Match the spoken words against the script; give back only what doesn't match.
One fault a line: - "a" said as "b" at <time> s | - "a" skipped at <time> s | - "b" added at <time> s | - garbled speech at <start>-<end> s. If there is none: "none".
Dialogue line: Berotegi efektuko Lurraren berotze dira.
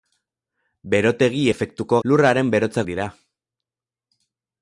none